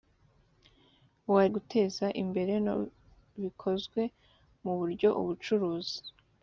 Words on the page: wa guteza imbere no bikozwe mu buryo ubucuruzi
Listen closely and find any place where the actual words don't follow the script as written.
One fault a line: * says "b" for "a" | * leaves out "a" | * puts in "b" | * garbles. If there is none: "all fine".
all fine